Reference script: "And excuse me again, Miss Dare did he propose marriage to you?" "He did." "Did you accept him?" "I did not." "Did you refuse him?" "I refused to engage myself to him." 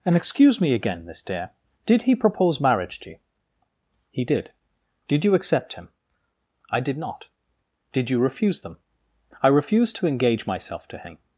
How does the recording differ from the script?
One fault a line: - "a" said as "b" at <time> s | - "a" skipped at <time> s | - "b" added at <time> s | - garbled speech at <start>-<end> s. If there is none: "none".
- "him" said as "them" at 8.6 s